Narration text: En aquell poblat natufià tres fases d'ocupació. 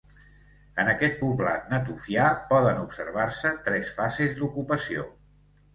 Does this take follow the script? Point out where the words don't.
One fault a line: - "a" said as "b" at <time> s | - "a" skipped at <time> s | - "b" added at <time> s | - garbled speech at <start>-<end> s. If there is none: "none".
- "aquell" said as "aquest" at 0.9 s
- "poden observar se" added at 2.5 s